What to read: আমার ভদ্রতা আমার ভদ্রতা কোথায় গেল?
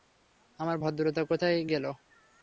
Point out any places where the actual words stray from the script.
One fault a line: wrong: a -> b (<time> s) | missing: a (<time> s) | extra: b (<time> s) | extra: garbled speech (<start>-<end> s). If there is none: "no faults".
missing: আমার ভদ্রতা (1.2 s)